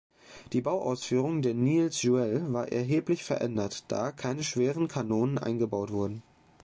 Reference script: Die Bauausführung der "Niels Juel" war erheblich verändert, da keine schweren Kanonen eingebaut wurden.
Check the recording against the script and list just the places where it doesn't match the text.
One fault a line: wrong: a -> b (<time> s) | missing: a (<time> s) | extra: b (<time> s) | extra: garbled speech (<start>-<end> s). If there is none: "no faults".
no faults